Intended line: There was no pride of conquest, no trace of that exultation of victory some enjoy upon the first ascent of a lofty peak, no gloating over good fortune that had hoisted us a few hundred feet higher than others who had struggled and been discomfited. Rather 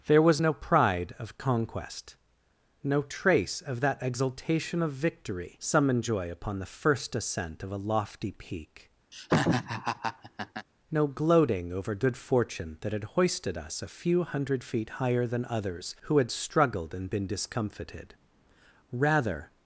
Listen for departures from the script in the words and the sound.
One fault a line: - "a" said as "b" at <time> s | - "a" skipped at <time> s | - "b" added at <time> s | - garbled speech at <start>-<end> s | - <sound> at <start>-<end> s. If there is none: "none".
- laugh at 9.1-10.7 s